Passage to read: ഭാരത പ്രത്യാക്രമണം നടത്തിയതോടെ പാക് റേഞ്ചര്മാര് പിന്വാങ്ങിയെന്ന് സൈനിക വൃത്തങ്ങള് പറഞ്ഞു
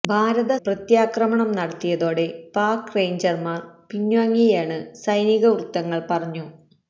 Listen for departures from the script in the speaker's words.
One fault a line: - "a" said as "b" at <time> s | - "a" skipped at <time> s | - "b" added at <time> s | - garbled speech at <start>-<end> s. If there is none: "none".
none